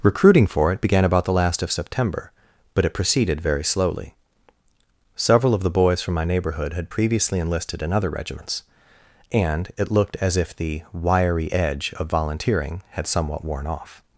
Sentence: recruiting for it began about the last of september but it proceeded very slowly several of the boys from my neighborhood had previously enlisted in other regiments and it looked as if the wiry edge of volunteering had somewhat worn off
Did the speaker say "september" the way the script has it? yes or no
yes